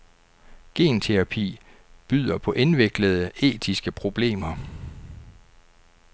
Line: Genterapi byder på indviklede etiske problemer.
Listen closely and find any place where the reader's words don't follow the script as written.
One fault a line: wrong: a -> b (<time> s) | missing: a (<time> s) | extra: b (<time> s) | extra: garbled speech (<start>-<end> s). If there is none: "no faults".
no faults